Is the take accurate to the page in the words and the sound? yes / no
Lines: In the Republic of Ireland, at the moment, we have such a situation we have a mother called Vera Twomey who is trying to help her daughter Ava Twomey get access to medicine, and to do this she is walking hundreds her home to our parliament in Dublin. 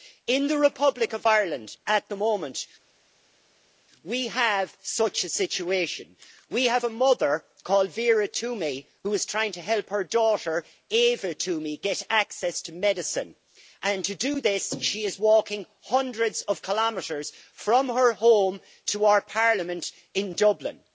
no